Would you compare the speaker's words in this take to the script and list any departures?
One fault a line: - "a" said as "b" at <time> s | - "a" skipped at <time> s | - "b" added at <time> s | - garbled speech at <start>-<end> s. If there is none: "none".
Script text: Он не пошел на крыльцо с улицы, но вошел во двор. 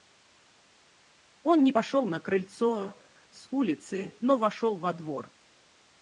none